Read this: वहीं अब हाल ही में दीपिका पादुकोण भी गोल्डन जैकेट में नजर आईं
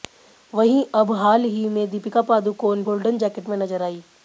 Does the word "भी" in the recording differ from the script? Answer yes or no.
yes